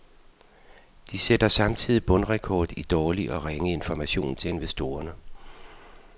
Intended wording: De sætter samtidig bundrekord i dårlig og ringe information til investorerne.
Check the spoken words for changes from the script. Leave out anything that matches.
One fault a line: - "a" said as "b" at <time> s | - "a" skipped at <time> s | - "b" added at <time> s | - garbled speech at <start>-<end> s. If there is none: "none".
none